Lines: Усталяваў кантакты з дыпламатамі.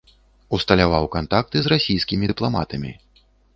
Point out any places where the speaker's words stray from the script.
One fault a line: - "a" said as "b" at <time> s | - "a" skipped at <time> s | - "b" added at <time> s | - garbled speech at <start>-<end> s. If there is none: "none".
- "расійскімі" added at 1.8 s